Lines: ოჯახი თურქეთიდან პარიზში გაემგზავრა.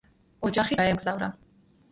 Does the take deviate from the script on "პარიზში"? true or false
true